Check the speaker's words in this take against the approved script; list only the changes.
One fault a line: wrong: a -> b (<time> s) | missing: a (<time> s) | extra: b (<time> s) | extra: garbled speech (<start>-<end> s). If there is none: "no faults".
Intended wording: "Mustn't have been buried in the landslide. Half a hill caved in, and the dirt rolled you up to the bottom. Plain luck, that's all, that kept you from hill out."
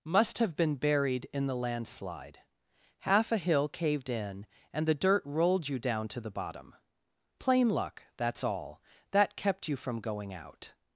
wrong: Mustn't -> Must (0.0 s)
wrong: up -> down (5.8 s)
wrong: hill -> going (10.0 s)